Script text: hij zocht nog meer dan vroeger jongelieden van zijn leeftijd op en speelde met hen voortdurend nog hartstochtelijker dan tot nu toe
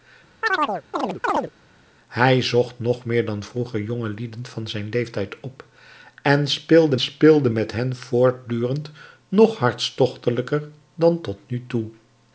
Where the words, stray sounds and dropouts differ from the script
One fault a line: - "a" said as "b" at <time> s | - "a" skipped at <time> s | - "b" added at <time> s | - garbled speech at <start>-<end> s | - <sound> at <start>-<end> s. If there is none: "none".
- chirp at 0.4-1.5 s
- "speelde" added at 7.0 s